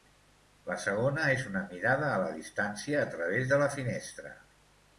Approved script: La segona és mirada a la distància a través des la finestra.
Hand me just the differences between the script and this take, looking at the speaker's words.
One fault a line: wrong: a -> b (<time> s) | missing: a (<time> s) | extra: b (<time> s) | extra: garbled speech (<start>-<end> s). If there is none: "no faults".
extra: una (1.5 s)
wrong: des -> de (3.5 s)